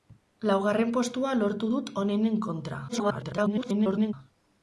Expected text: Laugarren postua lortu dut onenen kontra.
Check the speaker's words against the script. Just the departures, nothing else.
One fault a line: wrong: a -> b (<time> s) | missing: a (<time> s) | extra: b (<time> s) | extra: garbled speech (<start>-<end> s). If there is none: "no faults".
extra: garbled speech (2.9-4.1 s)